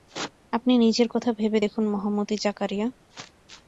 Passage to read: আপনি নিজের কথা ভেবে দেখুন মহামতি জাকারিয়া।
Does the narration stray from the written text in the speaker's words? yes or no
no